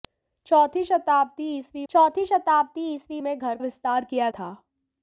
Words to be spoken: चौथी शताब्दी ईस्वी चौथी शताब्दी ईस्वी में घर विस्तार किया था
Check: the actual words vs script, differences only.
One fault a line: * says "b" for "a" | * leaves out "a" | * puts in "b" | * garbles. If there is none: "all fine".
all fine